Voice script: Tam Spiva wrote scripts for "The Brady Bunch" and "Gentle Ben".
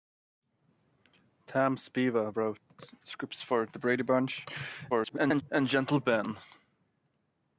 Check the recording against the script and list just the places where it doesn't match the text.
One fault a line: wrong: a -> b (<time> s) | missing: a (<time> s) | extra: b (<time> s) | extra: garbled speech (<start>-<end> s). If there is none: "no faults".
extra: garbled speech (4.9-5.4 s)